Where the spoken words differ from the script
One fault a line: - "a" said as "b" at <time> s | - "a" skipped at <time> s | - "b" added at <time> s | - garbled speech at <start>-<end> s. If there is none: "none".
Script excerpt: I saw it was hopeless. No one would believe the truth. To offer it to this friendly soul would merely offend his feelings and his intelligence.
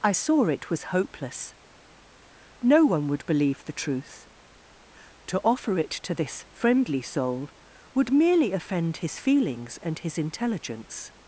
none